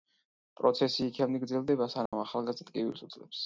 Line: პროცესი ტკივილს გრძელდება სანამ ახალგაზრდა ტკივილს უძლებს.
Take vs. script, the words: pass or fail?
fail